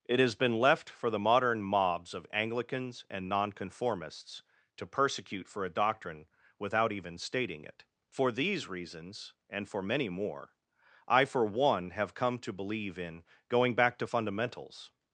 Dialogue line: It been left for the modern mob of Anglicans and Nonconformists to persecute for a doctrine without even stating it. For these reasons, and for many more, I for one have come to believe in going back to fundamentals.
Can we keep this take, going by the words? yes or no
no